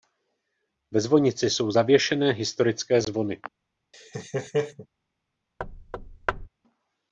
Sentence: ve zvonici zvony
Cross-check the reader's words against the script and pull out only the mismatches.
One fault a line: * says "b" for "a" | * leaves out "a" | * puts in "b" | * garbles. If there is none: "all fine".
* puts in "jsou zavěšené historické"